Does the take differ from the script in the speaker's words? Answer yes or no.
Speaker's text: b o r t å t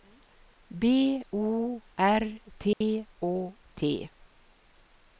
no